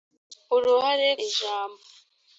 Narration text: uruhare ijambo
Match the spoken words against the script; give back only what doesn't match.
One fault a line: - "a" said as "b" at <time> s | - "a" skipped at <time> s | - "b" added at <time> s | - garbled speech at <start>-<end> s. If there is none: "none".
none